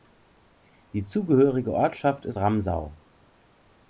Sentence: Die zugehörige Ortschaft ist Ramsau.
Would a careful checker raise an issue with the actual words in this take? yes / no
no